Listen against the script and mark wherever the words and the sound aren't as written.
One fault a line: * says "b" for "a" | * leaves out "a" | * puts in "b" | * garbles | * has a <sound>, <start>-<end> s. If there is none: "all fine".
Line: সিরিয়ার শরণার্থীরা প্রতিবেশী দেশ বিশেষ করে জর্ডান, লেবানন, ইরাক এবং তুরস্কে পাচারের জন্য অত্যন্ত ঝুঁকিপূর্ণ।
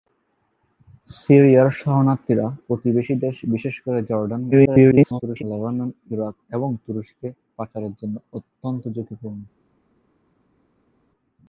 * garbles